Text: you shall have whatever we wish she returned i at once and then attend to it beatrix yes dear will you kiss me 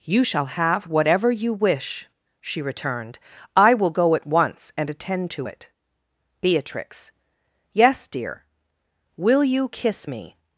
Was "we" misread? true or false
true